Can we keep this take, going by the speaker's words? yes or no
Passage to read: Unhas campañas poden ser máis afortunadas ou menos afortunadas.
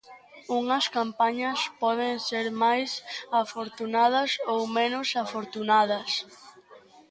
yes